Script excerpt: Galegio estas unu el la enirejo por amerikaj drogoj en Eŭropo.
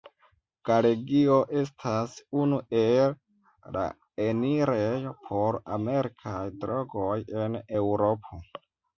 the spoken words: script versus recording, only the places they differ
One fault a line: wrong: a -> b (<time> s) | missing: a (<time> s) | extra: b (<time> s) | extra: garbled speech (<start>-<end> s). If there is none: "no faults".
no faults